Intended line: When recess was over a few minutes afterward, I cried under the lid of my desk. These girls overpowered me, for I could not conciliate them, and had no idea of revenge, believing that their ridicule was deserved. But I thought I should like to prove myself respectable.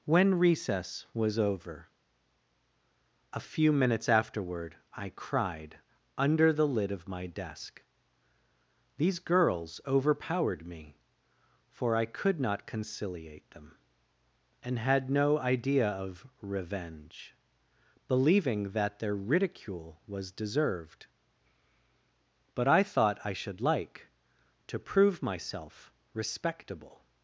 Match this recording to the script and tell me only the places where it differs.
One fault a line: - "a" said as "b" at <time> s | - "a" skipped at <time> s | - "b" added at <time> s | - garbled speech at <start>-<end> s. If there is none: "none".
none